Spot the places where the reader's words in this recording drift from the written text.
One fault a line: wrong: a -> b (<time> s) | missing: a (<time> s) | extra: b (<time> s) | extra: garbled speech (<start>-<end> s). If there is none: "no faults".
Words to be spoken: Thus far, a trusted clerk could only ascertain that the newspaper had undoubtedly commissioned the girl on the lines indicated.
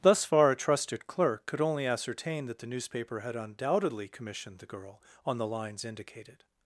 no faults